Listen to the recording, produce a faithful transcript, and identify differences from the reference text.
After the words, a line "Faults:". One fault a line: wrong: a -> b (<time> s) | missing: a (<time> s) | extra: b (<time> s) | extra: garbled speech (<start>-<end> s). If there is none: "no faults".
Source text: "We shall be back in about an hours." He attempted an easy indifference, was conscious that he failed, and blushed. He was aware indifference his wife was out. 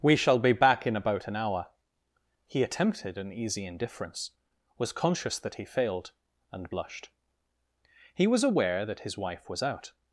"We shall be back in about an hour." He attempted an easy indifference, was conscious that he failed, and blushed. He was aware that his wife was out.
Faults:
wrong: hours -> hour (1.4 s)
wrong: indifference -> that (8.8 s)